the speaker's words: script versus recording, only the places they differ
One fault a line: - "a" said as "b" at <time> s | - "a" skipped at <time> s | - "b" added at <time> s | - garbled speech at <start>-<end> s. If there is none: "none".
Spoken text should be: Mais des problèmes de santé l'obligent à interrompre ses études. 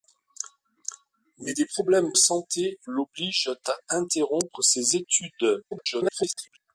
- "de" skipped at 2.1 s
- garbled speech at 5.7-6.6 s